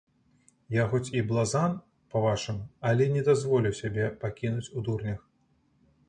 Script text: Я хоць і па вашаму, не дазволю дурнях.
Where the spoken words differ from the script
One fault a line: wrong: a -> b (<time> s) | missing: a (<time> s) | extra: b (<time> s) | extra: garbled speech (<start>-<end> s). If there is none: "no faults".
extra: блазан (1.3 s)
extra: але (2.9 s)
extra: сябе пакінуць у (3.8 s)